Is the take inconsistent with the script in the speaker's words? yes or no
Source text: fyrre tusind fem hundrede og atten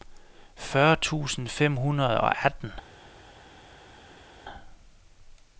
no